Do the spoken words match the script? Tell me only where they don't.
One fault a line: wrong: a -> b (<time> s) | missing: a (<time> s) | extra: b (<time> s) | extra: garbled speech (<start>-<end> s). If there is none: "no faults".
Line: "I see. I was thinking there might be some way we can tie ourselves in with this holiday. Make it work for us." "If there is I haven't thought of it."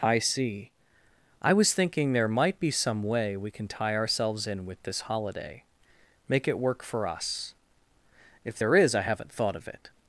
no faults